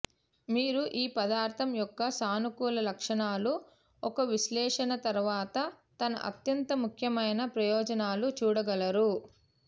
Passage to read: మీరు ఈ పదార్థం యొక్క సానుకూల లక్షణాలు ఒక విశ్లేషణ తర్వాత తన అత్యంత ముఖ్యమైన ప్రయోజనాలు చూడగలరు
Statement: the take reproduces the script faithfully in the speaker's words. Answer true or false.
true